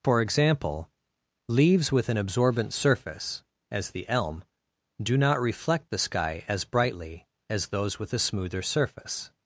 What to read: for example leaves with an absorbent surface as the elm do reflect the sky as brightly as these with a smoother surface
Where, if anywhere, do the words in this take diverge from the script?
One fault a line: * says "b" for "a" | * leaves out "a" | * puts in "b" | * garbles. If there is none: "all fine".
* puts in "not"
* says "those" for "these"